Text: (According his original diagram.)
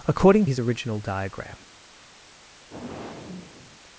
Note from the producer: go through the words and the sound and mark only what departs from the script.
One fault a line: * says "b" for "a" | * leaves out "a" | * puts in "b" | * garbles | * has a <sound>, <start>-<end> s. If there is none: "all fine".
* has a sigh, 2.7-3.8 s